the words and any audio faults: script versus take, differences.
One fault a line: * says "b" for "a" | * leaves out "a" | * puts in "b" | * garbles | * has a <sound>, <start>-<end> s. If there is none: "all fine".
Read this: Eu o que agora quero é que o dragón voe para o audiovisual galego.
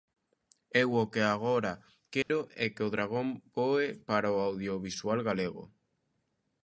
* has a dropout, 2.2-2.3 s